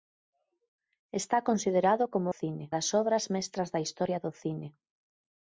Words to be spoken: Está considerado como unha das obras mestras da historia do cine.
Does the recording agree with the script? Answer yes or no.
no